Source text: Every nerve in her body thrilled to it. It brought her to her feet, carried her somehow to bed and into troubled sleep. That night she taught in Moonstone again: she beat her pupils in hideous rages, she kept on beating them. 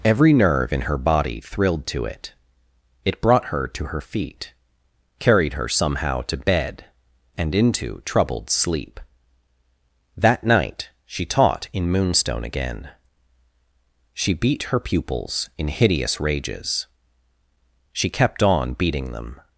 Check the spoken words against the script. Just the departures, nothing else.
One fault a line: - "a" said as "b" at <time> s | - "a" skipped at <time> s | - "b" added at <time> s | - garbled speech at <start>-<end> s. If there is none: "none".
none